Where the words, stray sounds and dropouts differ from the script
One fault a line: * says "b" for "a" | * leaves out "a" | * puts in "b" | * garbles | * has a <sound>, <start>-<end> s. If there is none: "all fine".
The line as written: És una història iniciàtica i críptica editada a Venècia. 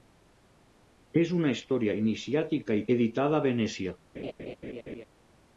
* leaves out "críptica"
* has a laugh, 4.1-5.1 s